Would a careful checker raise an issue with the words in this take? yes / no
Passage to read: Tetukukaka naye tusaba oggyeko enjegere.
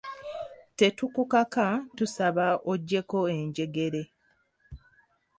yes